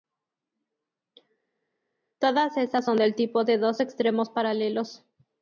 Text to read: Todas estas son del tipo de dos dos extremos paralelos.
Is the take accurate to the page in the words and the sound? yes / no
no